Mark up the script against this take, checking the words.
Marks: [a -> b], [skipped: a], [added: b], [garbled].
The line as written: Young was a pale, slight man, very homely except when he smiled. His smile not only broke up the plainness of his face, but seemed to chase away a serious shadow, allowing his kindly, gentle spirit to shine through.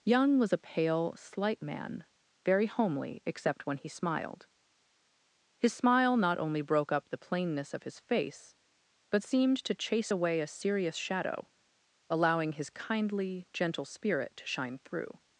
Young was a pale, slight man, very homely except when he smiled. His smile not only broke up the plainness of his face, but seemed to chase away a serious shadow, allowing his kindly, gentle spirit to shine through.